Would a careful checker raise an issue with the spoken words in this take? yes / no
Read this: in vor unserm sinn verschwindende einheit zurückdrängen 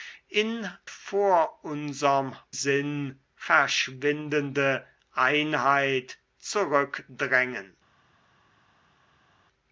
no